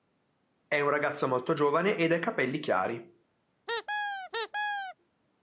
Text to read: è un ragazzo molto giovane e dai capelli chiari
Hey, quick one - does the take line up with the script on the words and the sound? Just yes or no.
no